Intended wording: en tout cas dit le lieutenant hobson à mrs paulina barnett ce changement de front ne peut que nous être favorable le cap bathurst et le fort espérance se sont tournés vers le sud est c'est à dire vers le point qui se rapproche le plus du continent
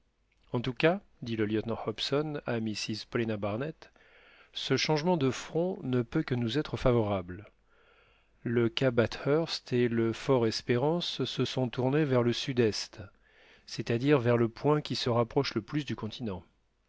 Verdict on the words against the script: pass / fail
pass